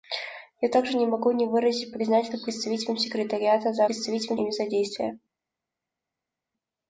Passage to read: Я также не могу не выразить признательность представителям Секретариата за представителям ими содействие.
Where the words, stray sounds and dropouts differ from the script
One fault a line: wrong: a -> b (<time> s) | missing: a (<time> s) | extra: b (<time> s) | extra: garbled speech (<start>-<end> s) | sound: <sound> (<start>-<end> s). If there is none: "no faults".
no faults